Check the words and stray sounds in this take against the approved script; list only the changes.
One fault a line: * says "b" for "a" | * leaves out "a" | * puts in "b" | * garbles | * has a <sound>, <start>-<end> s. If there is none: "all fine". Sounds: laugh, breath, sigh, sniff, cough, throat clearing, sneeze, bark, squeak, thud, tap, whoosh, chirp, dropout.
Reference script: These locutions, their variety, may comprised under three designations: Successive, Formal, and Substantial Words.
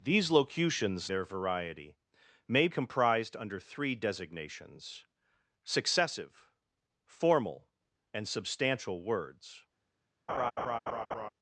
* has a laugh, 10.3-11.3 s